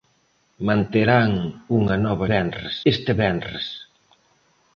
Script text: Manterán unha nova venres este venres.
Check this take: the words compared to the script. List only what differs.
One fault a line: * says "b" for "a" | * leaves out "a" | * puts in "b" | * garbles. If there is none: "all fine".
all fine